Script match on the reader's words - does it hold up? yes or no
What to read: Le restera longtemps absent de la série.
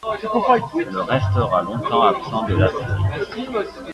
yes